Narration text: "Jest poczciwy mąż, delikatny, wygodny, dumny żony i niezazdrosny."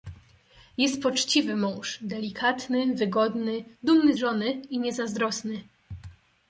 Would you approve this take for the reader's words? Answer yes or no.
yes